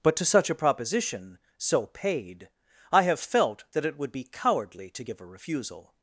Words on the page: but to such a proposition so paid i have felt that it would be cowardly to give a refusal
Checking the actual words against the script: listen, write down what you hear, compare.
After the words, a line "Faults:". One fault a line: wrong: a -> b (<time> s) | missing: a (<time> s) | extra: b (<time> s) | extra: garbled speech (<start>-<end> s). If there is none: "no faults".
but to such a proposition so paid i have felt that it would be cowardly to give a refusal
Faults:
no faults